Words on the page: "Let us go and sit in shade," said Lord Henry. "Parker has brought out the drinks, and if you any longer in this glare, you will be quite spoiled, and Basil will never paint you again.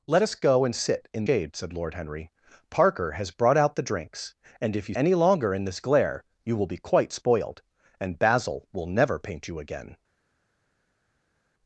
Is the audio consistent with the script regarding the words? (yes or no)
yes